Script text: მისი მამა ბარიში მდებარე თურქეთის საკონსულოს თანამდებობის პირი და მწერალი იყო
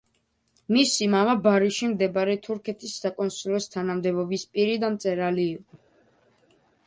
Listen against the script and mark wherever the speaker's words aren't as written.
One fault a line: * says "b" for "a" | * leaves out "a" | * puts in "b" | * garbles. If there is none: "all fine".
all fine